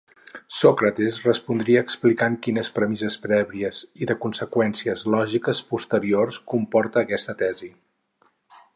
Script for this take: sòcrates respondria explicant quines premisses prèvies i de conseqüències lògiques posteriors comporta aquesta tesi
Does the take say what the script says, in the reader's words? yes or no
yes